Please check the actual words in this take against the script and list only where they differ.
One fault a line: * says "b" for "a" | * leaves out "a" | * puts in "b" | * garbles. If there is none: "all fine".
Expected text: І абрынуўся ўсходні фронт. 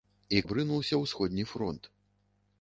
all fine